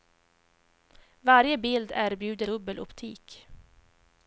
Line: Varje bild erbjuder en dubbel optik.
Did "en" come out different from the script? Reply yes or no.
yes